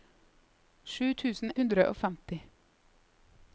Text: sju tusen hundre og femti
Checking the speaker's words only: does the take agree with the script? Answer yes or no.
yes